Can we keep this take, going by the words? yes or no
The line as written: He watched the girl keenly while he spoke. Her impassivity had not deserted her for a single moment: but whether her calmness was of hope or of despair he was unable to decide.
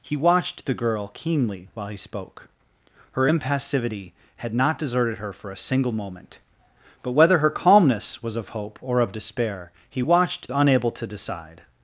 no